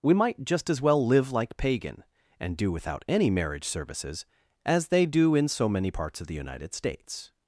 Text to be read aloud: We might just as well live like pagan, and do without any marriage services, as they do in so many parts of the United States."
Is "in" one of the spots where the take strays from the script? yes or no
no